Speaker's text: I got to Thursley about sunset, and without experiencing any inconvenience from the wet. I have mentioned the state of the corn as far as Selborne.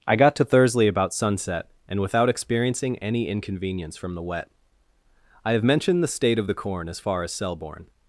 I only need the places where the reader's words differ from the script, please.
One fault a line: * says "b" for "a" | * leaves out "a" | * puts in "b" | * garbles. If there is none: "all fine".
all fine